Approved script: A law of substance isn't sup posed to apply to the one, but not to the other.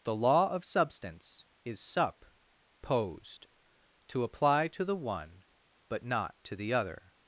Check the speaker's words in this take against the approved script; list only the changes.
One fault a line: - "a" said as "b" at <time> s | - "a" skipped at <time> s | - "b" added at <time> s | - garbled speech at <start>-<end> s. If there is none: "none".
- "A" said as "The" at 0.0 s
- "isn't" said as "is" at 1.6 s